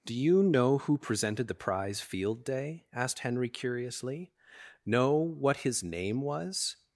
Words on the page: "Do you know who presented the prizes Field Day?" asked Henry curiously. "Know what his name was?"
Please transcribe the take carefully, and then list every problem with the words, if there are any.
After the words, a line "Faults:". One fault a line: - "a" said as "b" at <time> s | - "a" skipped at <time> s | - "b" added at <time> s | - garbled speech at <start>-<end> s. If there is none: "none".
"Do you know who presented the prize Field Day?" asked Henry curiously. "Know what his name was?"
Faults:
- "prizes" said as "prize" at 1.6 s